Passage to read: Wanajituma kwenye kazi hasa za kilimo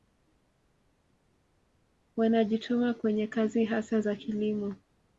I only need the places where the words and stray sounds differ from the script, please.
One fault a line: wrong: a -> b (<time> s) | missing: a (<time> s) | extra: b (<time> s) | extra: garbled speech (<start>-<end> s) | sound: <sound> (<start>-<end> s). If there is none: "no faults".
no faults